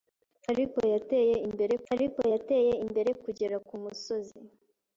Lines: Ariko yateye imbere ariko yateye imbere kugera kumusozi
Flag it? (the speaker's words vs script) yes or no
no